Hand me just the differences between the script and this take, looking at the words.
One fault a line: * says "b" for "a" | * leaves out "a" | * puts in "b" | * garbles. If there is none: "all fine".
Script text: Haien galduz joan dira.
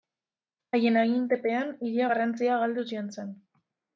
* puts in "agintepean hiria garrantzia"
* says "zen" for "dira"